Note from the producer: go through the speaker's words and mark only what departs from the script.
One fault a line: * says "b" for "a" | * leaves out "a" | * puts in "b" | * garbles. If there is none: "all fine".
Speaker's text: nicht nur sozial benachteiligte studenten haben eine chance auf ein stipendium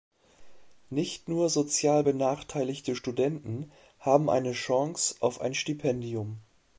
all fine